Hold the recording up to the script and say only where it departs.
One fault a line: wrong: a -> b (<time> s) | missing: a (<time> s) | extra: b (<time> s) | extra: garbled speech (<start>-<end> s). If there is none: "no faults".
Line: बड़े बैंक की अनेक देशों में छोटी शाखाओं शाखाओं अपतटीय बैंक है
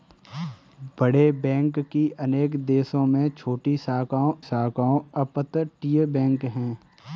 no faults